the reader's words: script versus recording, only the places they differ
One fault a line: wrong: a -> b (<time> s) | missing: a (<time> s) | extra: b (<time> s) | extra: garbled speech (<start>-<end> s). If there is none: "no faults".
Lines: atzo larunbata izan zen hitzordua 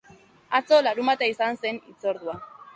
no faults